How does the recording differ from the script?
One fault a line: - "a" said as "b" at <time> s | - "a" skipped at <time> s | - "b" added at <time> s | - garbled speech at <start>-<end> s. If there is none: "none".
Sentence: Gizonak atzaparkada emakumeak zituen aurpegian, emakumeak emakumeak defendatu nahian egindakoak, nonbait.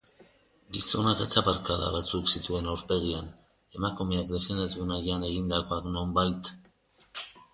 - "emakumeak" said as "batzuk" at 1.9 s
- "emakumeak" skipped at 4.3 s